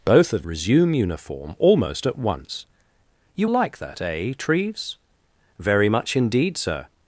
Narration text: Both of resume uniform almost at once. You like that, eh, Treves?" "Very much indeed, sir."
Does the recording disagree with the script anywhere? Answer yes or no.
no